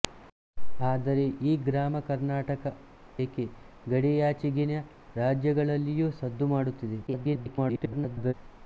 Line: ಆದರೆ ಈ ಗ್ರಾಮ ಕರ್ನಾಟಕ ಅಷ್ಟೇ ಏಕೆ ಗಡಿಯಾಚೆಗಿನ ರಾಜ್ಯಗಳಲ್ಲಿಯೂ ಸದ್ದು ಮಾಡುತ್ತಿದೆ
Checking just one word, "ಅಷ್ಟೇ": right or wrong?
wrong